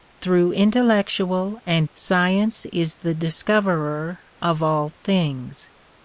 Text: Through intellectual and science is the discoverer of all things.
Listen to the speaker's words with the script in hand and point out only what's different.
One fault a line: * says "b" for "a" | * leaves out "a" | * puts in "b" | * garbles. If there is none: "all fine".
all fine